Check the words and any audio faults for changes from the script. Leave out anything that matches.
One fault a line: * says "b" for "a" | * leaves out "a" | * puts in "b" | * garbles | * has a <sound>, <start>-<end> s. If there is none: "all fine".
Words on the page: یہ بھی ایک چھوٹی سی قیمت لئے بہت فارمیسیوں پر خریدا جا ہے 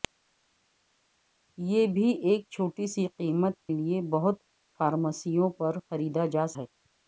all fine